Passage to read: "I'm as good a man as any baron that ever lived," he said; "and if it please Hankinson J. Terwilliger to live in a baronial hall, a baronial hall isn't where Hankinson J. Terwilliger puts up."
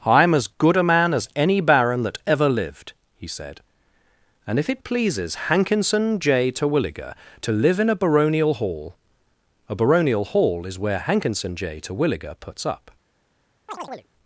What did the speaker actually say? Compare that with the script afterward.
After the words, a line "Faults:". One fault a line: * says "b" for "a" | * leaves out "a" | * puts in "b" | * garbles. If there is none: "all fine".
"I'm as good a man as any baron that ever lived," he said; "and if it pleases Hankinson J. Terwilliger to live in a baronial hall, a baronial hall is where Hankinson J. Terwilliger puts up."
Faults:
* says "pleases" for "please"
* says "is" for "isn't"